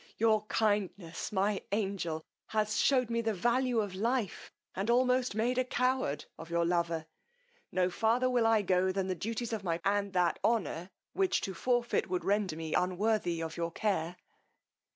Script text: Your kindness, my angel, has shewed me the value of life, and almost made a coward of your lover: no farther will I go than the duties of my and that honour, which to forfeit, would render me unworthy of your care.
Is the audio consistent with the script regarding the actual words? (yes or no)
yes